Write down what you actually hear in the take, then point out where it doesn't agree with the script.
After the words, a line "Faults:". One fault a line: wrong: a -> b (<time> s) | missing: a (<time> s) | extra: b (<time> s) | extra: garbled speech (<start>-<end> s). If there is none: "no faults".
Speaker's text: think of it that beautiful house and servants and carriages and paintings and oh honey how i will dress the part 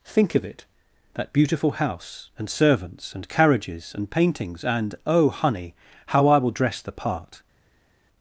think of it that beautiful house and servants and carriages and paintings and oh honey how i will dress the part
Faults:
no faults